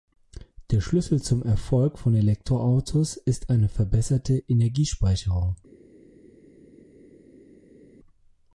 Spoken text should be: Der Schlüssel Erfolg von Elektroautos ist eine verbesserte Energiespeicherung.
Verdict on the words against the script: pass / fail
fail